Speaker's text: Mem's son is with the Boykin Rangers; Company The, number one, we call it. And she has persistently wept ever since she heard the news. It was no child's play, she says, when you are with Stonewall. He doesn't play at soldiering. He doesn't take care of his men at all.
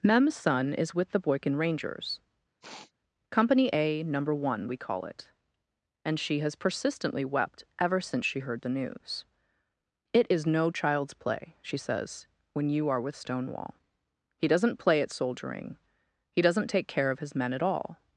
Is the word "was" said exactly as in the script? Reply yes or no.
no